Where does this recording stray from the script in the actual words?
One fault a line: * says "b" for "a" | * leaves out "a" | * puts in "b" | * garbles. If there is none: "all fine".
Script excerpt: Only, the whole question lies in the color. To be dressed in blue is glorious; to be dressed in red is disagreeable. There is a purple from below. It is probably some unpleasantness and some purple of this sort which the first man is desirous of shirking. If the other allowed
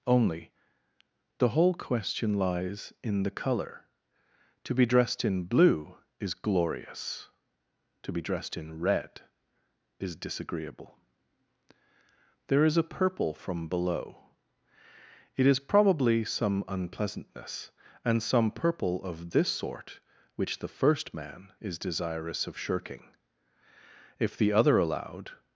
all fine